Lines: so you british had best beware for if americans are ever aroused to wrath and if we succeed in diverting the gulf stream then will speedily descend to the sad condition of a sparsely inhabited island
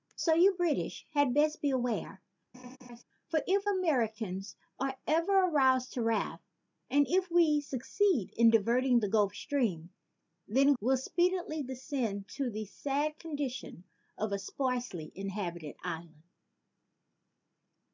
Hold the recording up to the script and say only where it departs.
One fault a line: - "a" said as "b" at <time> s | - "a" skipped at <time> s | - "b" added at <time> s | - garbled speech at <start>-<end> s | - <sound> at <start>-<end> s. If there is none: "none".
- laugh at 2.5-3.0 s